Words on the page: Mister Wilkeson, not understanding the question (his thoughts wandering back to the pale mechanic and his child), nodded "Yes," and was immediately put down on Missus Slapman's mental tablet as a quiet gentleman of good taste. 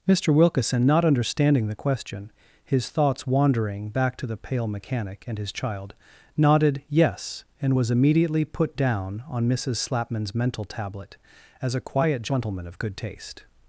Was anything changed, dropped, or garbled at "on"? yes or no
no